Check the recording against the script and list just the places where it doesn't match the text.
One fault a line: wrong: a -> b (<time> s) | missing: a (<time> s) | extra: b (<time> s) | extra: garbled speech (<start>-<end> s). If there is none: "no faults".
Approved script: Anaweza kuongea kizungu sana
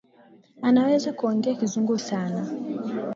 no faults